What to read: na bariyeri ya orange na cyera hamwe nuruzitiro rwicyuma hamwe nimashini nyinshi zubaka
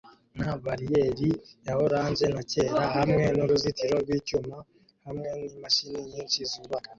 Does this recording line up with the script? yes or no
yes